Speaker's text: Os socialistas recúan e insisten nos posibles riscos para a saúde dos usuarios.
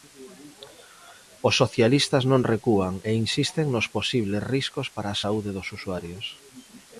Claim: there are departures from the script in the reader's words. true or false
true